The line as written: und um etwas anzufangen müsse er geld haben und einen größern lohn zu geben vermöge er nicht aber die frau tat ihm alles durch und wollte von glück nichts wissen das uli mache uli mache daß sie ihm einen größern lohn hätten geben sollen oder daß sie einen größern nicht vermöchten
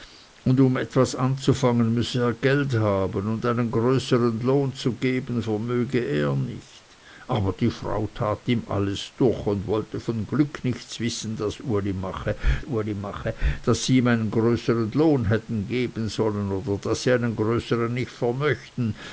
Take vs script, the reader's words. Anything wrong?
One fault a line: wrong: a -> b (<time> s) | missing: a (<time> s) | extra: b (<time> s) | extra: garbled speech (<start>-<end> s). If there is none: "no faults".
no faults